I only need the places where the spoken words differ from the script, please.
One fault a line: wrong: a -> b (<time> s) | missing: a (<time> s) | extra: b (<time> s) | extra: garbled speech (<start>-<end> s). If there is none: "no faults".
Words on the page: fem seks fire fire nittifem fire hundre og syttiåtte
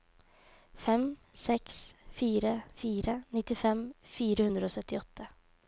no faults